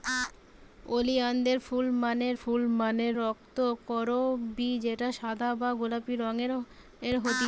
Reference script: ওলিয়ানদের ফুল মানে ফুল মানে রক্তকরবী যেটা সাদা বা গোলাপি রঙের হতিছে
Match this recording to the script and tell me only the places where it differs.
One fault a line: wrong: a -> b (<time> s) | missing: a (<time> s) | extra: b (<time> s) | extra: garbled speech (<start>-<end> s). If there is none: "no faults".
no faults